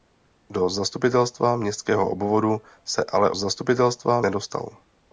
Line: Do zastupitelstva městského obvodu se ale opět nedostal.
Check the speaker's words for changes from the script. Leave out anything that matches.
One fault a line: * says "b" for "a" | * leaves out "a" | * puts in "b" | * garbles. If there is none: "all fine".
* says "zastupitelstva" for "opět"